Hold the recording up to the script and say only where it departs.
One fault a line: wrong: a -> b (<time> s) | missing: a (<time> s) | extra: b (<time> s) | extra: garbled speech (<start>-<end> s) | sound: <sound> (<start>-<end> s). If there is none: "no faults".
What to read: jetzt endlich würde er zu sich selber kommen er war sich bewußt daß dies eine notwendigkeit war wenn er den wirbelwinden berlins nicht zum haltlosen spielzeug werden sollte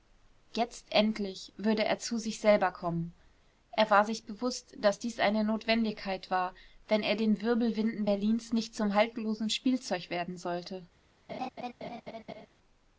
sound: laugh (11.3-12.5 s)